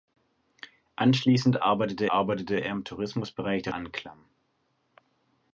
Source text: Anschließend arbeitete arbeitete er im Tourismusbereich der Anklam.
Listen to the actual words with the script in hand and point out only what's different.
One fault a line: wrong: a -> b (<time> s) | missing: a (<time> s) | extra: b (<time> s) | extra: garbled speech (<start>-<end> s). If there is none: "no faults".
no faults